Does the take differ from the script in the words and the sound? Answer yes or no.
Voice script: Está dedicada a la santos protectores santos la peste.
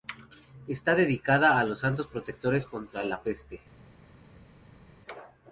yes